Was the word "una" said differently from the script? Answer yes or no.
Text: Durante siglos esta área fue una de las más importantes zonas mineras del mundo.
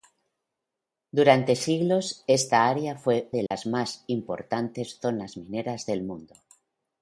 yes